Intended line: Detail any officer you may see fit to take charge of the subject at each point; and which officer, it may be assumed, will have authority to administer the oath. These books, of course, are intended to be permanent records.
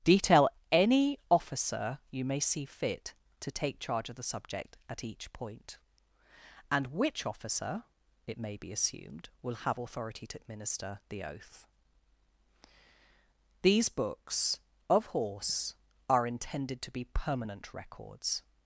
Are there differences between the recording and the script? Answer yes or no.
yes